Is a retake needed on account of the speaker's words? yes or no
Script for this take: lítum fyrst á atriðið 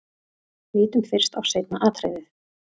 yes